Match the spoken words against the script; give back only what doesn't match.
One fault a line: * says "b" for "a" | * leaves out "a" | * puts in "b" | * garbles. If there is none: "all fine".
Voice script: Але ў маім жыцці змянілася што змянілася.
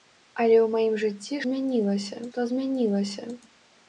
all fine